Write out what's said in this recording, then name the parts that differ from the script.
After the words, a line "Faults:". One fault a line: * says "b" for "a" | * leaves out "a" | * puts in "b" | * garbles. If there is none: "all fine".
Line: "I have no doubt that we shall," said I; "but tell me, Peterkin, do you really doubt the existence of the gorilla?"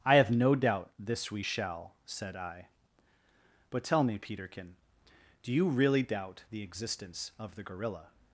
"I have no doubt this we shall," said I; "but tell me, Peterkin, do you really doubt the existence of the gorilla?"
Faults:
* says "this" for "that"